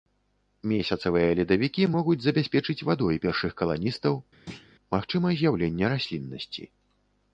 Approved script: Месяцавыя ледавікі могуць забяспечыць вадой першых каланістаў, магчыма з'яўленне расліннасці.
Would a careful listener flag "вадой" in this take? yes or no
no